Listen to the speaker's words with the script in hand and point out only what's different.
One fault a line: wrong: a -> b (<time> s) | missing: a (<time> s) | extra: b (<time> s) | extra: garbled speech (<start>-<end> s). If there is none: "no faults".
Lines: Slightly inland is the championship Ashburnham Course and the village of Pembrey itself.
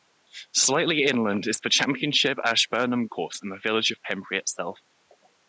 no faults